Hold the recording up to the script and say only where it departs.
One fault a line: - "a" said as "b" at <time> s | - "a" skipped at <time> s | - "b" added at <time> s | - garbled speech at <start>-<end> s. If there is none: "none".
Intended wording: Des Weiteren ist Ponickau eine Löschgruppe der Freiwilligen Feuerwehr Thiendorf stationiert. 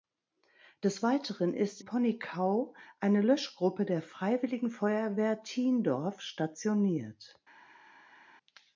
none